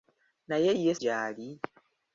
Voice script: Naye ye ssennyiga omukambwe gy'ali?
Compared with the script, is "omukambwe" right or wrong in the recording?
wrong